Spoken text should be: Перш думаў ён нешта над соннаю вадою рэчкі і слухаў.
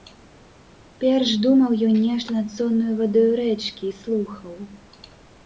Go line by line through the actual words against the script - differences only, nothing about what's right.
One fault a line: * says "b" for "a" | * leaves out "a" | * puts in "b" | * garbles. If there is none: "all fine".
all fine